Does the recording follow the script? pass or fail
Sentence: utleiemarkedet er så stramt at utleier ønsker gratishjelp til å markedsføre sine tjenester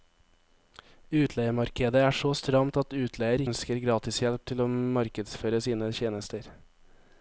pass